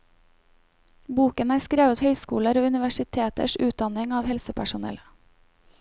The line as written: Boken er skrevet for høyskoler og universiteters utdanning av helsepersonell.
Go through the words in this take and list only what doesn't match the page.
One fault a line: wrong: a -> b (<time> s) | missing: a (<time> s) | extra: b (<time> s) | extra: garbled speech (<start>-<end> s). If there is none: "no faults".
missing: for (2.0 s)